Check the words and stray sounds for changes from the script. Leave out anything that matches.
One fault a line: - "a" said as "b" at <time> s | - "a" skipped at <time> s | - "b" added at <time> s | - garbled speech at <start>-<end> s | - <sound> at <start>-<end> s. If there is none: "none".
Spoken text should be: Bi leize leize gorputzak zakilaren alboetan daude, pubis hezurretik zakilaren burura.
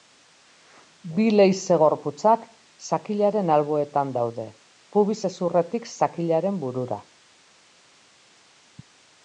- "leize" skipped at 1.8 s